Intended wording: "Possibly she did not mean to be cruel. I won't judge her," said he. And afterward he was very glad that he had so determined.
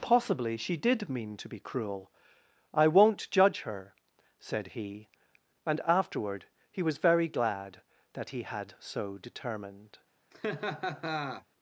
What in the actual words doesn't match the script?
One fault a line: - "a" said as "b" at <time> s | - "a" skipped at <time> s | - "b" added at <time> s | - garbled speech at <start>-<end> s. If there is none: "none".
- "not" skipped at 1.1 s